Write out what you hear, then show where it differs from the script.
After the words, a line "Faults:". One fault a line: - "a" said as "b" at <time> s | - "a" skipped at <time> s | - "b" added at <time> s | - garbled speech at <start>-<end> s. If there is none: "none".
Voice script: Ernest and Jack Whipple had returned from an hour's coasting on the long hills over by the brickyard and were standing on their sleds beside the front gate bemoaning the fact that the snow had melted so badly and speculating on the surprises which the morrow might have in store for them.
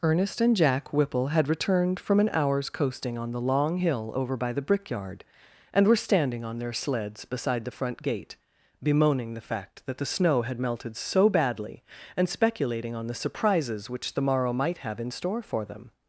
Ernest and Jack Whipple had returned from an hour's coasting on the long hill over by the brickyard and were standing on their sleds beside the front gate bemoaning the fact that the snow had melted so badly and speculating on the surprises which the morrow might have in store for them.
Faults:
- "hills" said as "hill" at 3.7 s